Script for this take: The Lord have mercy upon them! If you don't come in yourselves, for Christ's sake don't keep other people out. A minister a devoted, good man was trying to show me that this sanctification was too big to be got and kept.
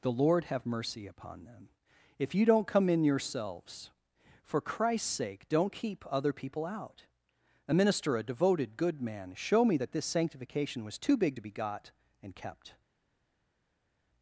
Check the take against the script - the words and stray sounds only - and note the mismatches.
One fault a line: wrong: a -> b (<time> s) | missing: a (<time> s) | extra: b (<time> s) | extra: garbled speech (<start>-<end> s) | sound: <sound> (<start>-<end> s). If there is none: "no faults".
missing: was trying to (9.3 s)